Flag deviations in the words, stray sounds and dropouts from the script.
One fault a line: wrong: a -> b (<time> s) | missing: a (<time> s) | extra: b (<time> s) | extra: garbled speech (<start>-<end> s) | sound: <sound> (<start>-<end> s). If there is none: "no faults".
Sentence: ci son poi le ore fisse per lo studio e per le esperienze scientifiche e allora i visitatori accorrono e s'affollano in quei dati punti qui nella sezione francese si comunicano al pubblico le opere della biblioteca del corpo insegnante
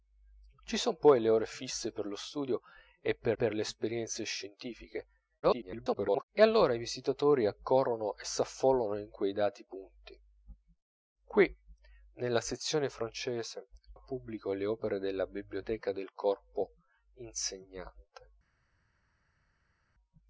extra: per (3.3 s)
extra: garbled speech (5.4-6.2 s)
missing: si comunicano (13.7 s)